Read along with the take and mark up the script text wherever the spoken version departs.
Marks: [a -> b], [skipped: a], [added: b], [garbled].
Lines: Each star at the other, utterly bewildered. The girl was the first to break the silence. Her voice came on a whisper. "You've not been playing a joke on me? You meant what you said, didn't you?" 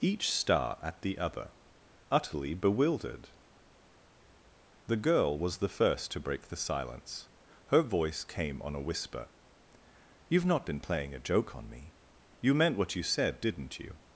Each star at the other, utterly bewildered. The girl was the first to break the silence. Her voice came on a whisper. "You've not been playing a joke on me? You meant what you said, didn't you?"